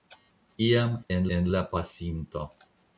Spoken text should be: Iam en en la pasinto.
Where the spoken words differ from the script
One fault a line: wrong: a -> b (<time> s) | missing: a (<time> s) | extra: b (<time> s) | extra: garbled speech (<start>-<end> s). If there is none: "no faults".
no faults